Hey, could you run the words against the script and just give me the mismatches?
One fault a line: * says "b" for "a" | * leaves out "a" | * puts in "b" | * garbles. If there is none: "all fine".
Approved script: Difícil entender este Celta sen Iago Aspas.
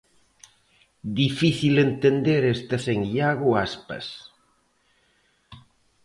* leaves out "Celta"